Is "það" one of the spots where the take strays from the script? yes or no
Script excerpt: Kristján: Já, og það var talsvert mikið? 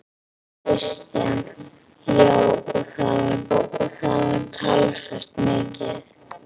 no